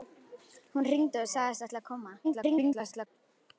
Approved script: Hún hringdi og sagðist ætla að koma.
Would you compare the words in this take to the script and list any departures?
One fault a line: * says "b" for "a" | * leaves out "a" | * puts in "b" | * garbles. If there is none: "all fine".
* garbles